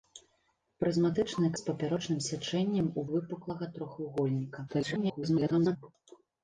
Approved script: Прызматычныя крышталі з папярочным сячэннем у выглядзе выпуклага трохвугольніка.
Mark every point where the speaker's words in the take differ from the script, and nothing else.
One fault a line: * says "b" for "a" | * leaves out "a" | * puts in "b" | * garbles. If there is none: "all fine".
* leaves out "крышталі"
* leaves out "выглядзе"
* garbles